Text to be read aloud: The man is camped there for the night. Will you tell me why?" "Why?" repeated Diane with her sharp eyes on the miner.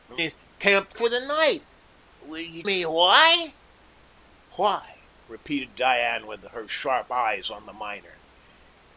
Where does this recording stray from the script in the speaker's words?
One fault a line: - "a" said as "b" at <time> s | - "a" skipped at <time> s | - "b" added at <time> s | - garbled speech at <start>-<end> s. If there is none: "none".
- "man" skipped at 0.2 s
- "there" skipped at 1.0 s
- "tell" skipped at 2.6 s